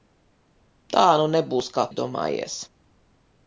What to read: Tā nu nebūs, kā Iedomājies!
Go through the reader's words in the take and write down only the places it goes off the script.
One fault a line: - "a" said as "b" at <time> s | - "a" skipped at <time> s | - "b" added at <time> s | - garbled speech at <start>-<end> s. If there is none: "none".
none